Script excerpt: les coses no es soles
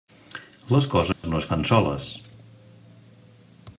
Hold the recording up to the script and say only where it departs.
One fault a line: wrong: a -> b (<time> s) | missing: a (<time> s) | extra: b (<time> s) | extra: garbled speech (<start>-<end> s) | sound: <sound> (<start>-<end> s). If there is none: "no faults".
sound: dropout (1.1-1.2 s)
extra: fan (1.5 s)